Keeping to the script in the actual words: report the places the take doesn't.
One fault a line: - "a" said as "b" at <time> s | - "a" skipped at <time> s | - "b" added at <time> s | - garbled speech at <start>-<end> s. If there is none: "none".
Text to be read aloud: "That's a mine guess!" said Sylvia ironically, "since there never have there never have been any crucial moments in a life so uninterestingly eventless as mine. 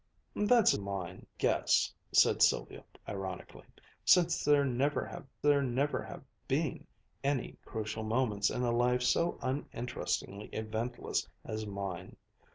none